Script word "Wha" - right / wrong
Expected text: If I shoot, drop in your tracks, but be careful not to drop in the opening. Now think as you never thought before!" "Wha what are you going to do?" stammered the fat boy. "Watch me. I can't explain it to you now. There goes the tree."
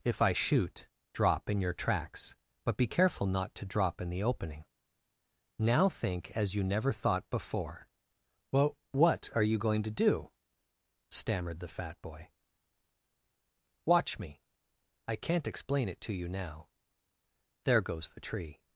wrong